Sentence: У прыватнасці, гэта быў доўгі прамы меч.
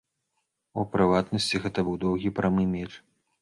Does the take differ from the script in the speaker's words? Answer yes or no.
no